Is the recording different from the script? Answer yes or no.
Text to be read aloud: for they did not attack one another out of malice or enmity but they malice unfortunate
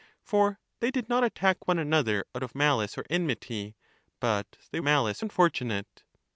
no